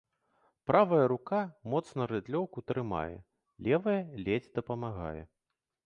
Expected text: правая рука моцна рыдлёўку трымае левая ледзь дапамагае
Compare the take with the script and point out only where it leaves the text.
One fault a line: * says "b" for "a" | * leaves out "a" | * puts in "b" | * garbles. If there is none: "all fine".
all fine